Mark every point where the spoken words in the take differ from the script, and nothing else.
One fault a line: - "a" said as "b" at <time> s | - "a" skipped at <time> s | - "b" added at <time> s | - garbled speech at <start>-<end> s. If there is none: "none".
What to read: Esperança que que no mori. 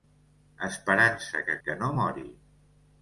none